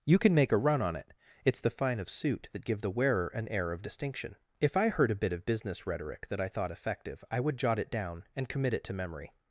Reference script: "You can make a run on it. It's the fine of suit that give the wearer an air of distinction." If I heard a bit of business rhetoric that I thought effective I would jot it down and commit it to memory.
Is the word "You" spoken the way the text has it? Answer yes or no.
yes